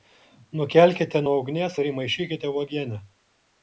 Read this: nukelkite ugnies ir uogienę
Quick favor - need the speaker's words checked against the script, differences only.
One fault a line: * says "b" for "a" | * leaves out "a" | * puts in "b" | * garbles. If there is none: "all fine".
* puts in "nuo"
* puts in "įmaišykite"